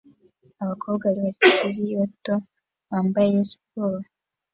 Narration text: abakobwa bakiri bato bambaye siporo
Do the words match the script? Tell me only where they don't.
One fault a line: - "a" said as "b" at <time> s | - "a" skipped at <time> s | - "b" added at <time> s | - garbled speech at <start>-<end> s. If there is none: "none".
none